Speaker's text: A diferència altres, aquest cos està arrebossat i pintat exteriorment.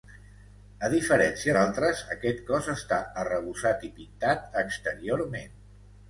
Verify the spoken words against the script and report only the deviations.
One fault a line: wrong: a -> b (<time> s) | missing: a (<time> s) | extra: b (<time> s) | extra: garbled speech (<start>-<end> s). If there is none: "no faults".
no faults